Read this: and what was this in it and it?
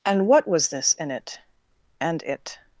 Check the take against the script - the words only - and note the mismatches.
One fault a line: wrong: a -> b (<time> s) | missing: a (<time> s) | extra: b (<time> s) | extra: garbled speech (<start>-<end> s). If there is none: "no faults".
no faults